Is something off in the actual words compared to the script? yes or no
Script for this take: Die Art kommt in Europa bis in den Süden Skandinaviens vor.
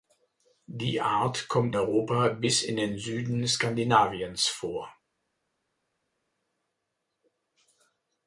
yes